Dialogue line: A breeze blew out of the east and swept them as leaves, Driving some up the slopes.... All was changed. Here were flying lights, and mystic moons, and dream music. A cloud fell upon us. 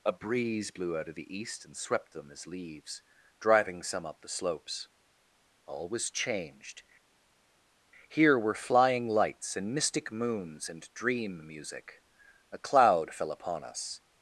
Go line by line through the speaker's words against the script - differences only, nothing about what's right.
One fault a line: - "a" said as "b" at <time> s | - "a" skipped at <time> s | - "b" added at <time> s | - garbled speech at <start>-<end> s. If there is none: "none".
none